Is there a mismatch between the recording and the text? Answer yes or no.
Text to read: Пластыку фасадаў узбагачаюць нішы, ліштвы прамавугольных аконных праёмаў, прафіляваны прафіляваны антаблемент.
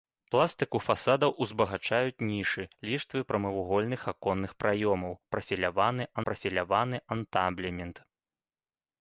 no